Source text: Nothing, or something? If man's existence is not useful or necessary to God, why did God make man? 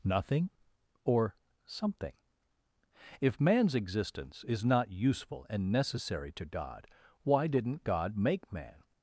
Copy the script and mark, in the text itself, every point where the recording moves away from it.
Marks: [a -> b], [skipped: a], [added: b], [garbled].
Nothing, or something? If man's existence is not useful [or -> and] necessary to God, why [did -> didn't] God make man?